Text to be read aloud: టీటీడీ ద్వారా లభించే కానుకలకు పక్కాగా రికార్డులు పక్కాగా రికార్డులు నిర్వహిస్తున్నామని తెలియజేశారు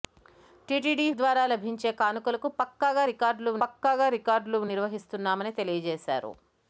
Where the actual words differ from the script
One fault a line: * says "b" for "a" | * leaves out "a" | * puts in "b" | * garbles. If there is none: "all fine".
all fine